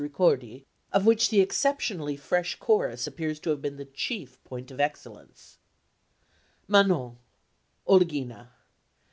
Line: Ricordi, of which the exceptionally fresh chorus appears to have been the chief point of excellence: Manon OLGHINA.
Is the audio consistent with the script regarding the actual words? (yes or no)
yes